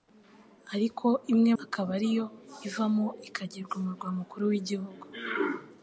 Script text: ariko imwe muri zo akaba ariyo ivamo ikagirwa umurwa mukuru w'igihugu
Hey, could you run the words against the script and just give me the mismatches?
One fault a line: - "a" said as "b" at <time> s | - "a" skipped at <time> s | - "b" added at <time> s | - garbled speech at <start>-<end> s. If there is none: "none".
- "muri zo" skipped at 1.5 s